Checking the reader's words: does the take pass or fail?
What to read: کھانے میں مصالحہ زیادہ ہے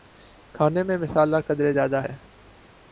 fail